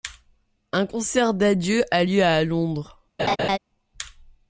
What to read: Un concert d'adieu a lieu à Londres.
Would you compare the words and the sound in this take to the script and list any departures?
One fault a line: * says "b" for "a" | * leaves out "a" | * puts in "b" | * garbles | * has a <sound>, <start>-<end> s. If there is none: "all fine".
* has a laugh, 3.2-3.6 s